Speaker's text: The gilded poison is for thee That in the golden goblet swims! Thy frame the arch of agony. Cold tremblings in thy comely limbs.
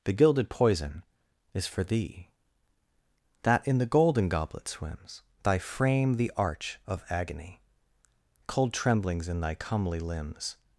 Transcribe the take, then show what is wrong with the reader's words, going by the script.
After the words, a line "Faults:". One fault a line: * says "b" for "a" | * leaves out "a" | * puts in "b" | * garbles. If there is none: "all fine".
The gilded poison is for thee That in the golden goblet swims! Thy frame the arch of agony. Cold tremblings in thy comely limbs.
Faults:
all fine